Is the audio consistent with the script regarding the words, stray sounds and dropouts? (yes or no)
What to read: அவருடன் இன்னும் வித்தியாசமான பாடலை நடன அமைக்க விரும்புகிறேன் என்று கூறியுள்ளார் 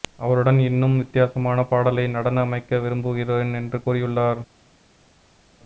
yes